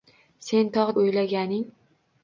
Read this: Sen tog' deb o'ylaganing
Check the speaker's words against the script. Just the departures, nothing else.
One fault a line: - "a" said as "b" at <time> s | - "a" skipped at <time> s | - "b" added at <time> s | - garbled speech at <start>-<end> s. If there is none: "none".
- "deb" skipped at 0.9 s